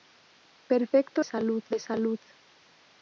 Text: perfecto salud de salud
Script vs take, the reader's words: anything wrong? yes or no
no